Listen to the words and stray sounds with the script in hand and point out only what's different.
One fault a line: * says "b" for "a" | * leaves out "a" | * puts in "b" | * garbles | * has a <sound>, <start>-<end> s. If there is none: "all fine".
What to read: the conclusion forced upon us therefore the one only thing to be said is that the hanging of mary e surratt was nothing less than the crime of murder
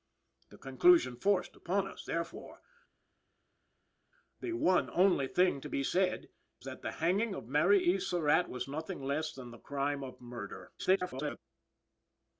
* leaves out "is"
* garbles